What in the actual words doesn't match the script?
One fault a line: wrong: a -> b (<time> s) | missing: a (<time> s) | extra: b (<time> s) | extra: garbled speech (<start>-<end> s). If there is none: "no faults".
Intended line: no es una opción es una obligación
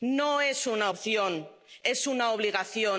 no faults